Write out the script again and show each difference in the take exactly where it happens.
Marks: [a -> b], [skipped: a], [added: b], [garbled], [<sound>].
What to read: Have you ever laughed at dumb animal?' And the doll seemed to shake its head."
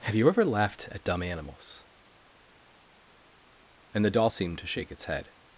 Have you ever laughed at dumb [animal?' -> animals] And the doll seemed to shake its head."